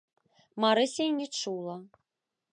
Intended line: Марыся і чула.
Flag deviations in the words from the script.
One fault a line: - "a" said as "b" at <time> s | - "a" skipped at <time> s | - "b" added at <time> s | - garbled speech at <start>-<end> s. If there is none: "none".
- "не" added at 1.2 s